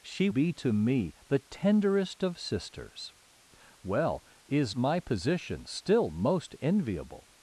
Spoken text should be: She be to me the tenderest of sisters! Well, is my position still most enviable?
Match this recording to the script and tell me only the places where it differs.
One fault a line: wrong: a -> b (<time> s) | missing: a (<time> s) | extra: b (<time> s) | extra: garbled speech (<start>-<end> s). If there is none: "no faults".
no faults